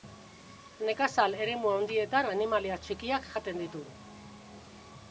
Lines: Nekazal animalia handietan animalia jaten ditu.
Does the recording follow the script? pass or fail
fail